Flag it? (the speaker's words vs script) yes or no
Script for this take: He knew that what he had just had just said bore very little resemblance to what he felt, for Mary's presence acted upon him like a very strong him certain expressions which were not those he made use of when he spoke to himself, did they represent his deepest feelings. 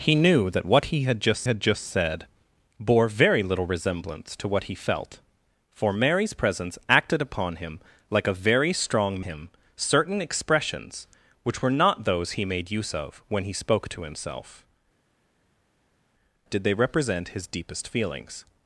no